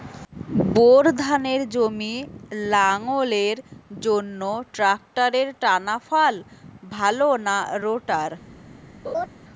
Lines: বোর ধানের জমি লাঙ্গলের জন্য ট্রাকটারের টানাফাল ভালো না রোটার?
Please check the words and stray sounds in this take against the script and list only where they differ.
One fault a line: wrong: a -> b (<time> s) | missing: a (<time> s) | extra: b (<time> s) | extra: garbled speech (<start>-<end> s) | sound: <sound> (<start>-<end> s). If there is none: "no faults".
sound: laugh (9.0-9.3 s)